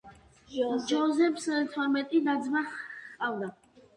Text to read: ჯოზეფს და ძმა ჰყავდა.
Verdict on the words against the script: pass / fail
fail